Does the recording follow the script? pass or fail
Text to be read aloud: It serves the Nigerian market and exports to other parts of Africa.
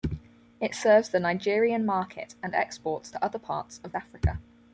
pass